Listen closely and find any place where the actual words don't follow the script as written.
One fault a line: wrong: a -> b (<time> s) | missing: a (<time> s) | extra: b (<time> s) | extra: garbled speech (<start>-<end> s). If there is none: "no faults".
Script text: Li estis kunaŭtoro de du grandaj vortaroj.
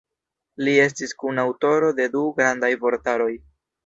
no faults